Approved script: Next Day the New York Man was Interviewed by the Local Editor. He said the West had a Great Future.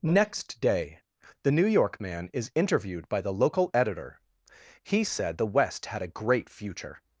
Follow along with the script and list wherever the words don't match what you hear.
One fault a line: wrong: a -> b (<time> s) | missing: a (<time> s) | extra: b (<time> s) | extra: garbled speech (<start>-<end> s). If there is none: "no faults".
wrong: was -> is (2.3 s)